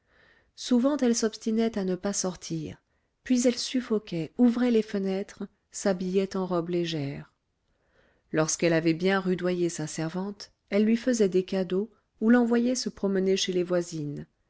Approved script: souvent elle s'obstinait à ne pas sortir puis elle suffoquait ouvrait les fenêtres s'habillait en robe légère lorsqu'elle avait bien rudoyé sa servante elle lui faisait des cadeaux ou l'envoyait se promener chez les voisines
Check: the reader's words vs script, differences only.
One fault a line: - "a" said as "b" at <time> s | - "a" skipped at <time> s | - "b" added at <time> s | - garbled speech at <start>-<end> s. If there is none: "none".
none